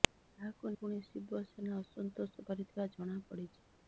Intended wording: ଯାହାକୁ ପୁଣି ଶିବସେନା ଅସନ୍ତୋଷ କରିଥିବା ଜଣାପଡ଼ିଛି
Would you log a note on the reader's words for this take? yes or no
no